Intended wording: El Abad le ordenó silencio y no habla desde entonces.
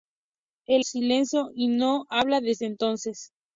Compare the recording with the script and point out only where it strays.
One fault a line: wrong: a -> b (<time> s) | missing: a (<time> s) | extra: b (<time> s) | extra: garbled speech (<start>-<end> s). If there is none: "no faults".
missing: Abad le ordenó (0.8 s)